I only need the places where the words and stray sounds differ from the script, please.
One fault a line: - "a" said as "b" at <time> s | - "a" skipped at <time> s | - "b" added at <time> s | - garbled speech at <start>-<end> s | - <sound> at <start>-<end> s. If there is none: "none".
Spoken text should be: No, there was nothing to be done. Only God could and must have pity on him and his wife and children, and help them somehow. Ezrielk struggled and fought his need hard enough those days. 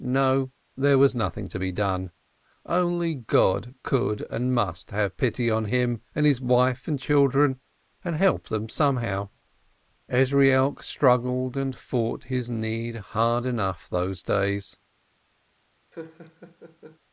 - laugh at 15.9-17.0 s